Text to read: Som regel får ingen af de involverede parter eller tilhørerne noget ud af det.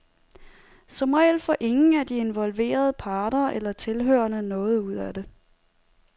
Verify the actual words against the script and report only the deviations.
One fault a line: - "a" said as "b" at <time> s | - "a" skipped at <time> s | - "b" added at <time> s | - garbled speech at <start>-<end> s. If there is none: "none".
none